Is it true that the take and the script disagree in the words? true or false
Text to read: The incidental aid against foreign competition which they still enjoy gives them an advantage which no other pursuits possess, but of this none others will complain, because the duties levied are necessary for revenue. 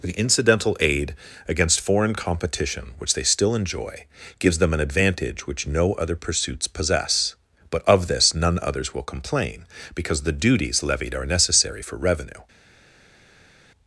false